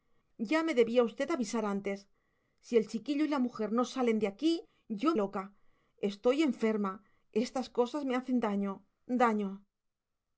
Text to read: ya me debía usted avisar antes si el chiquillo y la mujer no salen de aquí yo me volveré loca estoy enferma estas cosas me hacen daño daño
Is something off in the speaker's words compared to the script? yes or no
yes